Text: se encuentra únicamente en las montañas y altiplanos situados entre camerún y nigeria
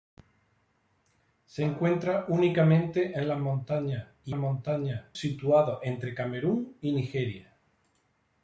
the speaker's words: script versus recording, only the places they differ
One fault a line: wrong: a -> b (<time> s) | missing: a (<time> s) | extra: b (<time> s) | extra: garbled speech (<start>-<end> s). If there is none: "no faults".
wrong: altiplanos -> montañas (4.3 s)